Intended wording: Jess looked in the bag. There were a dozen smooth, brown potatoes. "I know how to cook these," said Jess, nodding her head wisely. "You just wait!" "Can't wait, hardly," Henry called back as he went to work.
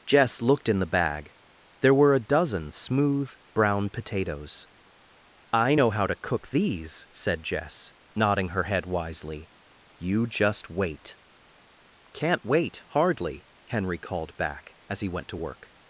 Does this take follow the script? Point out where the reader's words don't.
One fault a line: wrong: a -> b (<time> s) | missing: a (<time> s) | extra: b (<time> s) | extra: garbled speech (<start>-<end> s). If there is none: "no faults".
no faults